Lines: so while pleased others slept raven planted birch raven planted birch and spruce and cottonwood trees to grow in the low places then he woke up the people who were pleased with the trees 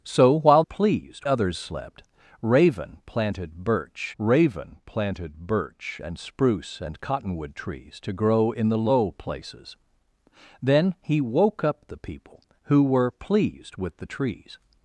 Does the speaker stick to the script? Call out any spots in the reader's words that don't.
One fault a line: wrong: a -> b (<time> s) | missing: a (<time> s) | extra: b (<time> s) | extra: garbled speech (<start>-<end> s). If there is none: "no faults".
no faults